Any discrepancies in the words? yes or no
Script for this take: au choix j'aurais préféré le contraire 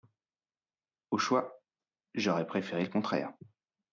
no